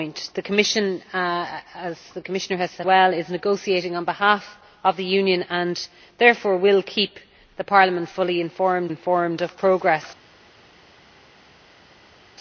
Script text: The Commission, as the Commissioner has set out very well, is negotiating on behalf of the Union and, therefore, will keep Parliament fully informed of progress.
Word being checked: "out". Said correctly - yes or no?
no